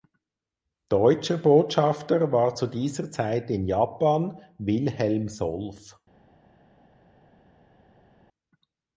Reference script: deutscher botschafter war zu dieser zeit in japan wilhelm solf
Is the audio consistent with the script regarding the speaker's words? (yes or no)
yes